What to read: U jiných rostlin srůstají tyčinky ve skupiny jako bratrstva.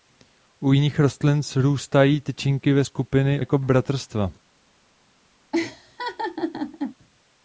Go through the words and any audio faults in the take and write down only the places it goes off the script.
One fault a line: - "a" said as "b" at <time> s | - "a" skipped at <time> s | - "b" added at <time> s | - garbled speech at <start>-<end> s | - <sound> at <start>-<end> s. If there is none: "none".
- laugh at 5.5-7.0 s